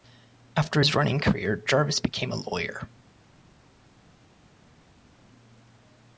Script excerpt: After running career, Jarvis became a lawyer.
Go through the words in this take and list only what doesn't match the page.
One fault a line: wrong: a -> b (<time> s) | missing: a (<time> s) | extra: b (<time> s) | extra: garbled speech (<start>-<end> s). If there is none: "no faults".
extra: his (0.8 s)